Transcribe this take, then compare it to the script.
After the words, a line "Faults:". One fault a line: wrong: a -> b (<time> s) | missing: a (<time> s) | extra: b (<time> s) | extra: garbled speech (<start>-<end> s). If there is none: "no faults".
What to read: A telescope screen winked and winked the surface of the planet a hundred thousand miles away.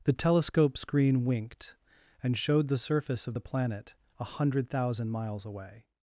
The telescope screen winked and showed the surface of the planet a hundred thousand miles away.
Faults:
wrong: A -> The (0.0 s)
wrong: winked -> showed (2.4 s)